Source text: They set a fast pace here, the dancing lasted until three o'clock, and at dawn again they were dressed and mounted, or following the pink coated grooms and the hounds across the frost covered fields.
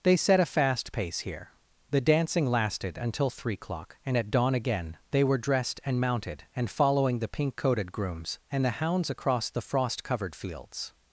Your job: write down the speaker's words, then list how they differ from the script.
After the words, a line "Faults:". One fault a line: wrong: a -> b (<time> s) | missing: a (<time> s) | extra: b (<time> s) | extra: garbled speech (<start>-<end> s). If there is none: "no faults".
They set a fast pace here, the dancing lasted until three o'clock, and at dawn again they were dressed and mounted, and following the pink coated grooms and the hounds across the frost covered fields.
Faults:
wrong: or -> and (6.5 s)